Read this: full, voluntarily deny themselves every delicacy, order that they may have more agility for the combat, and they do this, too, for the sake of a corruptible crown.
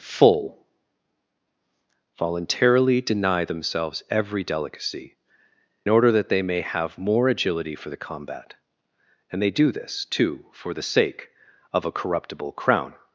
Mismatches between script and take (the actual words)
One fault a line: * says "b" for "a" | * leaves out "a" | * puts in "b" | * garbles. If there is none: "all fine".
all fine